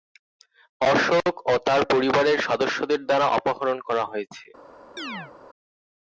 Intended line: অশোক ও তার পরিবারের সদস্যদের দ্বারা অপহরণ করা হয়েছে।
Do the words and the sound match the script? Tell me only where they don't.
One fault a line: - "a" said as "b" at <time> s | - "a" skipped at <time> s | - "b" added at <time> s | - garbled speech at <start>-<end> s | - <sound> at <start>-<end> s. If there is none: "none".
- chirp at 5.0-5.3 s